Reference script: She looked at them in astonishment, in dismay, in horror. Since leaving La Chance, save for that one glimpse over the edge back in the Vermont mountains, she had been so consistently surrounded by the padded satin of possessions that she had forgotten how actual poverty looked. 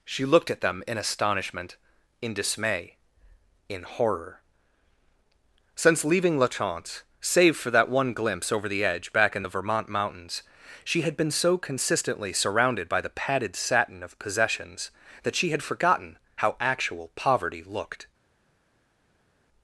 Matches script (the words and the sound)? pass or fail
pass